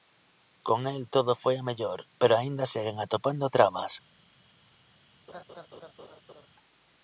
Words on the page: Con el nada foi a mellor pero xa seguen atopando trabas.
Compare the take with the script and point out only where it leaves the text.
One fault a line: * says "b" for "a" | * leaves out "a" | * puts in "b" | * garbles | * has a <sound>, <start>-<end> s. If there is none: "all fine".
* says "todo" for "nada"
* says "aínda" for "xa"
* has a laugh, 5.3-6.5 s